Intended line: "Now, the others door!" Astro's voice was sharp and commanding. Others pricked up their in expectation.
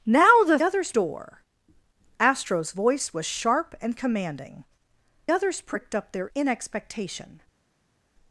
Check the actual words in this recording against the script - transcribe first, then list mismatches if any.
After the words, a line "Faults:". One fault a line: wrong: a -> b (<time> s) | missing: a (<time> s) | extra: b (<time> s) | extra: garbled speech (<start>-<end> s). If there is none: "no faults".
"Now, the others door!" Astro's voice was sharp and commanding. Others pricked up their in expectation.
Faults:
no faults